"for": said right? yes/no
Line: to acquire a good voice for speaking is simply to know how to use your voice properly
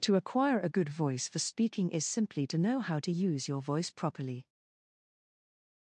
yes